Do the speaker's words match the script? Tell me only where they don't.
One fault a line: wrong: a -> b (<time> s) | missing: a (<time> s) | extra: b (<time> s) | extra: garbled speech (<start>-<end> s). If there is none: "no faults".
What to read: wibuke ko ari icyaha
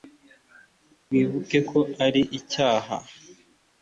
no faults